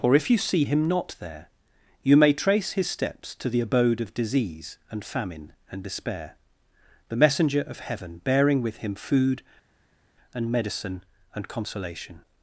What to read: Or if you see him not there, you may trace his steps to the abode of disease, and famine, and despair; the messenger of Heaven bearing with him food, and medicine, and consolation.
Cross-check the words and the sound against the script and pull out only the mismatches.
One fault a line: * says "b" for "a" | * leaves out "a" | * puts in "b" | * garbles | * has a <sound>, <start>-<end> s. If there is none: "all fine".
all fine